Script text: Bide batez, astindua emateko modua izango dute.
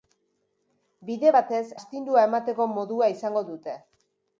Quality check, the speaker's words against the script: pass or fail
pass